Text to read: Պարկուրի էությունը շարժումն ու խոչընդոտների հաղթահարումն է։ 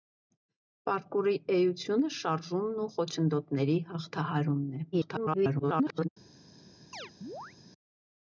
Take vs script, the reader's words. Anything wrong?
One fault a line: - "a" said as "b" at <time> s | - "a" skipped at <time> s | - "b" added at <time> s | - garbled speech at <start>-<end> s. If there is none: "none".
- garbled speech at 4.9-6.1 s